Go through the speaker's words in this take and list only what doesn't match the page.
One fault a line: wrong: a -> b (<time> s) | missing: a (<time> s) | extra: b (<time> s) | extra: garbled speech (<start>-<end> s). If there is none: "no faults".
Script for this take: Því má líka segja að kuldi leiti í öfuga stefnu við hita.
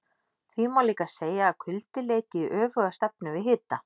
no faults